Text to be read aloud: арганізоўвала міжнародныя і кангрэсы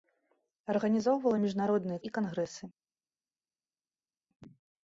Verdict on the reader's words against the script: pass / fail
pass